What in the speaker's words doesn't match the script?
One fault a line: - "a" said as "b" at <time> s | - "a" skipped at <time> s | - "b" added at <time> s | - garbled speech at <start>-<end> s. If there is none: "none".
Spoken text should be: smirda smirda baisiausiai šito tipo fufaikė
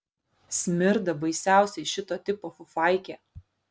- "smirda" skipped at 1.1 s